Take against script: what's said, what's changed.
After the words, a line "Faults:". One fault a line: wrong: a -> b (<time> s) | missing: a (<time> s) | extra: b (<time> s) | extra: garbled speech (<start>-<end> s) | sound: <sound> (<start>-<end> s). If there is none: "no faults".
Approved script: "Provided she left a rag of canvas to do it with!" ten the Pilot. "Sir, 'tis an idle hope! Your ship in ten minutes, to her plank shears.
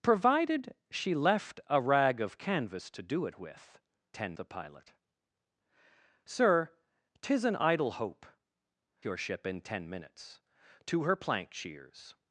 "Provided she left a rag of canvas to do it with!" ten the Pilot. "Sir, 'tis an idle hope! Your ship in ten minutes, to her plank shears.
Faults:
no faults